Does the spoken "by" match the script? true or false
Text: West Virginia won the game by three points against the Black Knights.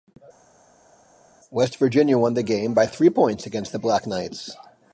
true